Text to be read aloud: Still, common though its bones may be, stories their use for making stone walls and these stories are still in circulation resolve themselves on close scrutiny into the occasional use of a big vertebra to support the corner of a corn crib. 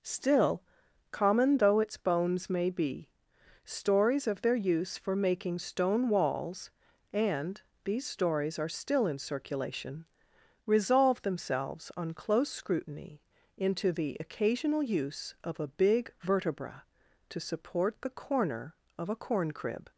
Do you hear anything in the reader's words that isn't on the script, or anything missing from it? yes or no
yes